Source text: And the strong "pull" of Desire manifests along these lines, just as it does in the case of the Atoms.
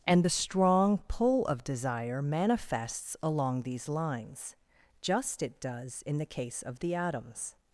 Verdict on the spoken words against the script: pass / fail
fail